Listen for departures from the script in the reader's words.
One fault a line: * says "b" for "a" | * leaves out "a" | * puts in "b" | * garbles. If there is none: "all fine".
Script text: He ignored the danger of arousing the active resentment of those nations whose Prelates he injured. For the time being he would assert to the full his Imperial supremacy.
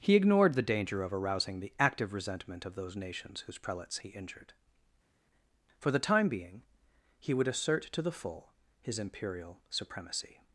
all fine